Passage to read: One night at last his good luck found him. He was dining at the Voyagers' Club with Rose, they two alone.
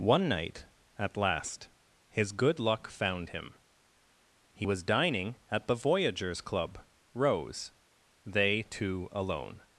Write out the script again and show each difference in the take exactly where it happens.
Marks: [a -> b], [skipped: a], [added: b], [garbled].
One night at last his good luck found him. He was dining at the Voyagers' Club [skipped: with] Rose, they two alone.